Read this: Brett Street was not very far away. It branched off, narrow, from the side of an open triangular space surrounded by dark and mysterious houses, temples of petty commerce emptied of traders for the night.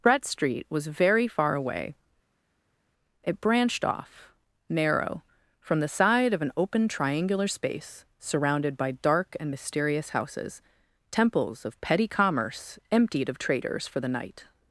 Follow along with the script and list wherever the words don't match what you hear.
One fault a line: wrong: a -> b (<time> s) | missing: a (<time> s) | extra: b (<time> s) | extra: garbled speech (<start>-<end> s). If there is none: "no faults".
missing: not (0.9 s)